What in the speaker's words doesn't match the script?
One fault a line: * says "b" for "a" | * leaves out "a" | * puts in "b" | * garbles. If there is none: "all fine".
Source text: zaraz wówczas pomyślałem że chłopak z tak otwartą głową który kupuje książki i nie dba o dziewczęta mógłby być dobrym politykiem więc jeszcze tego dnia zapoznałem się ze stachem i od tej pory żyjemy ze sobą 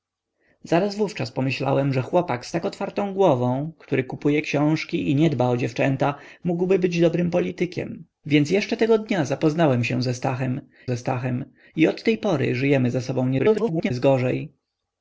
* puts in "ze stachem"
* garbles